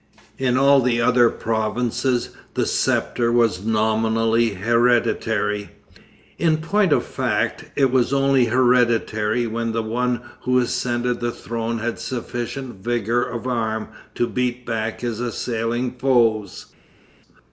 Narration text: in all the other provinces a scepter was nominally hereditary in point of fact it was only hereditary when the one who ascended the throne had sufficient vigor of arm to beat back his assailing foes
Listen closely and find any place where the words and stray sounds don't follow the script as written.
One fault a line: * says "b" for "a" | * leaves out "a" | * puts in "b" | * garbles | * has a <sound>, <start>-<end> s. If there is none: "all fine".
* says "the" for "a"